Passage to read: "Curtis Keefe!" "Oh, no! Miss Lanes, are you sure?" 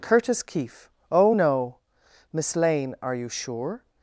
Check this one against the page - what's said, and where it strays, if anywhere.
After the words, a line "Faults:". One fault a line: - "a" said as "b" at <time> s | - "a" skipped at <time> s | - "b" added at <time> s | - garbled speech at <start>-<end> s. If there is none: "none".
"Curtis Keefe!" "Oh, no! Miss Lane, are you sure?"
Faults:
- "Lanes" said as "Lane" at 2.5 s